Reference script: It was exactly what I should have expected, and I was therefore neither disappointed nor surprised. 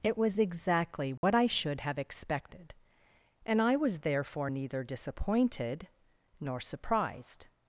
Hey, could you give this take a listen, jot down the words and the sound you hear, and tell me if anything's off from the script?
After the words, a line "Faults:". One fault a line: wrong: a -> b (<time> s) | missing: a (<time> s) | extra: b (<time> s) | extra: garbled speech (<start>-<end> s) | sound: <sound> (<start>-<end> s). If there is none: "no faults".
It was exactly what I should have expected, and I was therefore neither disappointed nor surprised.
Faults:
sound: dropout (1.2-1.2 s)